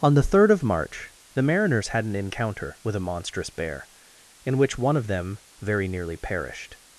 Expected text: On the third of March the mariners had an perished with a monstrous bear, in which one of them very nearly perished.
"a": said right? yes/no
yes